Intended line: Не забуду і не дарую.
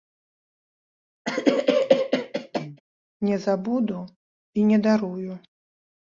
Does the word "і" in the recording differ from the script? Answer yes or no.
no